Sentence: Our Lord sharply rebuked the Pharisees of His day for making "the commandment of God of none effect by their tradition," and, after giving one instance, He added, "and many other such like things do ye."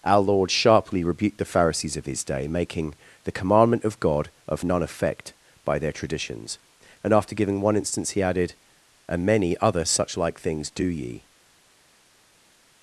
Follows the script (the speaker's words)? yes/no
no